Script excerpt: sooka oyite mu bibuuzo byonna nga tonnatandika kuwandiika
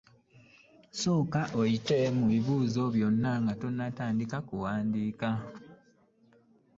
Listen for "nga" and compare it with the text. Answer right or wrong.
right